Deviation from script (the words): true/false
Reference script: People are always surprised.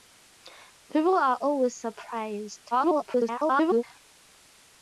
true